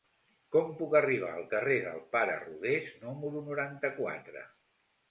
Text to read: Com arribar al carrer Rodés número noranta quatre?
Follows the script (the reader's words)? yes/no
no